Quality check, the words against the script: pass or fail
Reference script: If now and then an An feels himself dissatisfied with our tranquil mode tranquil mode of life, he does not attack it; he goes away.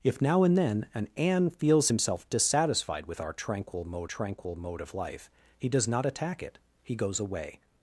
pass